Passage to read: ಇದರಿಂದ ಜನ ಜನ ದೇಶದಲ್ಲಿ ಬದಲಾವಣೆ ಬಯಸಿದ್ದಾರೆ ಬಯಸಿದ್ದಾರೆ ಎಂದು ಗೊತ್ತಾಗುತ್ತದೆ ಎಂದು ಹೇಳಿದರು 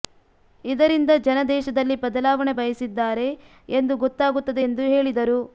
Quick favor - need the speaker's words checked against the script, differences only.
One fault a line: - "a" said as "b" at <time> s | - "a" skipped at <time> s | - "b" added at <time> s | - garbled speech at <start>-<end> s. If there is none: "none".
- "ಜನ" skipped at 1.4 s
- "ಬಯಸಿದ್ದಾರೆ" skipped at 3.3 s